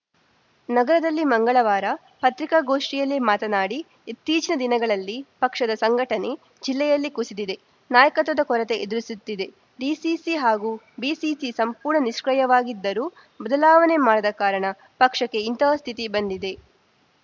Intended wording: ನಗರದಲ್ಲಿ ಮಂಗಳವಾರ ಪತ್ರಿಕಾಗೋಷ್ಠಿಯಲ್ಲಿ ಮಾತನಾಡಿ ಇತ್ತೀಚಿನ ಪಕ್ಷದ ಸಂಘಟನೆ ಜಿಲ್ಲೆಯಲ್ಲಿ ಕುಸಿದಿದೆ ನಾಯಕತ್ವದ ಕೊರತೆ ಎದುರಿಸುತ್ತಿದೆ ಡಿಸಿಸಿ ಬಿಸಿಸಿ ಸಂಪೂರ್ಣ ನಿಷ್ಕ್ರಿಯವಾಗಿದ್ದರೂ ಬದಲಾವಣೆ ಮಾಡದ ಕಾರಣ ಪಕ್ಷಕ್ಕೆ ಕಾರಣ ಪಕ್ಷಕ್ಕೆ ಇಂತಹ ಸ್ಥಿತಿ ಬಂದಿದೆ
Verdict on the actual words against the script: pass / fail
fail